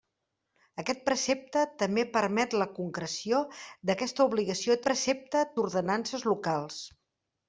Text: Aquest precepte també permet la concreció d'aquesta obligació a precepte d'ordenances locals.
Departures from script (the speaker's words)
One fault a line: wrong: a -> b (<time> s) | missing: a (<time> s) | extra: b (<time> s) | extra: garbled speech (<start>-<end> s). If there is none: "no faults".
no faults